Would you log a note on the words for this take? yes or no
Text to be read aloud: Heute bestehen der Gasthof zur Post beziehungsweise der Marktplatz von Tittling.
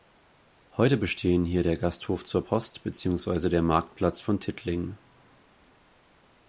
yes